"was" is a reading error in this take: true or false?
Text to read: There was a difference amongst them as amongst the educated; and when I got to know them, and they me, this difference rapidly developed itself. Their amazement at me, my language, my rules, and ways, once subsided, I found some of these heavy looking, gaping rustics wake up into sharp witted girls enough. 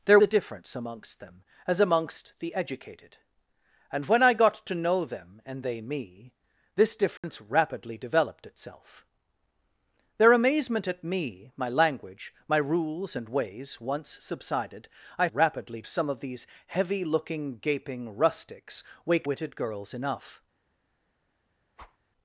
true